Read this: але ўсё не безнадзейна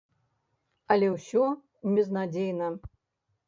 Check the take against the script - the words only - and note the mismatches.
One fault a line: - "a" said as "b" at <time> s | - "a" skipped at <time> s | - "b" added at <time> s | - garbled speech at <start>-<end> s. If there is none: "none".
- "не" skipped at 1.4 s